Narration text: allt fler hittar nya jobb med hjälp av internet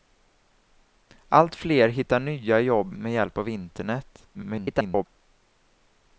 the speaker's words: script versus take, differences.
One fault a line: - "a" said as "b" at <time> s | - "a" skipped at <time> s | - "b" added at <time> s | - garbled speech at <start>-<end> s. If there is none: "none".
- garbled speech at 4.3-5.1 s